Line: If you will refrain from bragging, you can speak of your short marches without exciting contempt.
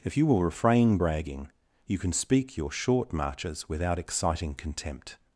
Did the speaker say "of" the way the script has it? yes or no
no